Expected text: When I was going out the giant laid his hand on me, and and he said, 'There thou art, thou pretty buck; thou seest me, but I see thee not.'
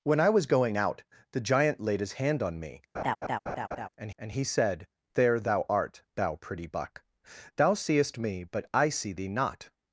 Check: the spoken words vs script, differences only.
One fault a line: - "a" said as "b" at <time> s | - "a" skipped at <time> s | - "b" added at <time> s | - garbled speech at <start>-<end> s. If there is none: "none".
none